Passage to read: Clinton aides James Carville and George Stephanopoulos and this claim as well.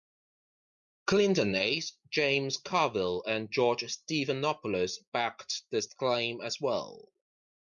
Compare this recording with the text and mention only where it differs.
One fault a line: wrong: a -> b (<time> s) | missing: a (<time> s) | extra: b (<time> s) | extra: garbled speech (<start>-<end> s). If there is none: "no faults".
wrong: and -> backed (5.1 s)